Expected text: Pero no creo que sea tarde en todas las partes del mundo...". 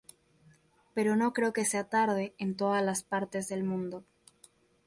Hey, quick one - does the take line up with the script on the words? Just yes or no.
yes